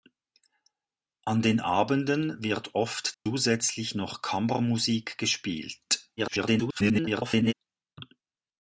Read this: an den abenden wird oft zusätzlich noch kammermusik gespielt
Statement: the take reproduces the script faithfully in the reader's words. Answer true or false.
false